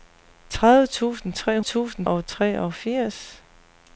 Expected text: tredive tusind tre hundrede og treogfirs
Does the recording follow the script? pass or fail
fail